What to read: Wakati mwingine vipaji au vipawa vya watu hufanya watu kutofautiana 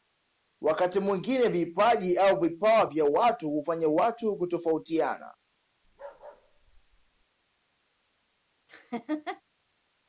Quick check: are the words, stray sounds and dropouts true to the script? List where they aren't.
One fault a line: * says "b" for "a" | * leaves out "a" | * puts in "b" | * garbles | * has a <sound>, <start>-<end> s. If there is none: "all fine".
* has a bark, 5.8-7.3 s
* has a laugh, 8.7-9.4 s